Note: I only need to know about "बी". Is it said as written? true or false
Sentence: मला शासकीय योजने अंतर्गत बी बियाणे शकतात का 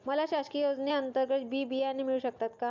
true